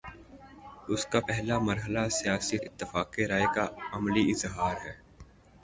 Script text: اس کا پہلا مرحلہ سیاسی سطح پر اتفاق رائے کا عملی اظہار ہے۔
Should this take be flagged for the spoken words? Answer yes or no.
yes